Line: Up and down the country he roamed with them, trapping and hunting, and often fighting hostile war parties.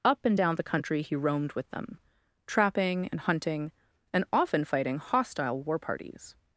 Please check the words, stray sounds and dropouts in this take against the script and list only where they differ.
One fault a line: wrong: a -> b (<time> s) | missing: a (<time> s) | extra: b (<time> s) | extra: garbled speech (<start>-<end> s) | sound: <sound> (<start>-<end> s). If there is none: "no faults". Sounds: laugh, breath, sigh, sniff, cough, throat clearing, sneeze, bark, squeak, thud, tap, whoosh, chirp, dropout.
no faults